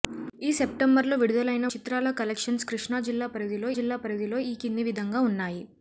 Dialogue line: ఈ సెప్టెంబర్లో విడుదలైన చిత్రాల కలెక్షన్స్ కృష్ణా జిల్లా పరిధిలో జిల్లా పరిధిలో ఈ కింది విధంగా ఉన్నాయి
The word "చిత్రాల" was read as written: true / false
true